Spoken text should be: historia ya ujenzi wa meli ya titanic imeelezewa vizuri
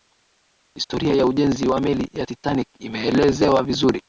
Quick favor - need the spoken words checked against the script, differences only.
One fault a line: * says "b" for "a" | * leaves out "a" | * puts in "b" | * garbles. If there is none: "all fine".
all fine